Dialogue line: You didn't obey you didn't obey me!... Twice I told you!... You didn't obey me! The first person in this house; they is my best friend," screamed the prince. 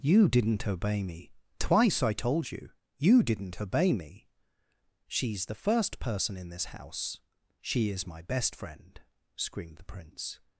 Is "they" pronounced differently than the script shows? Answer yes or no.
yes